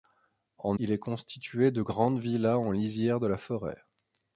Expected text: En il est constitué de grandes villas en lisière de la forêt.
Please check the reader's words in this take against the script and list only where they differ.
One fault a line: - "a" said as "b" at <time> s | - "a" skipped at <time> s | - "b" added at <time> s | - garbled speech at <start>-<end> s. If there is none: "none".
none